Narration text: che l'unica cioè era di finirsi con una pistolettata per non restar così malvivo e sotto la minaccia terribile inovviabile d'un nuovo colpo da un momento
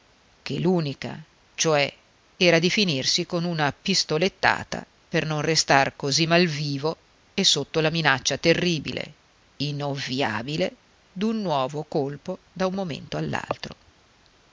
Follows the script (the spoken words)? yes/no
yes